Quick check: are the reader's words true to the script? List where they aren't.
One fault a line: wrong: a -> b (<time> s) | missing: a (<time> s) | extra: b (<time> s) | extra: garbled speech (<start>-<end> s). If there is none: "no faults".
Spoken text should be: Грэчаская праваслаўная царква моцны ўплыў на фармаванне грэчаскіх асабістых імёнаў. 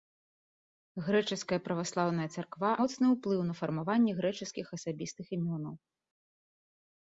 no faults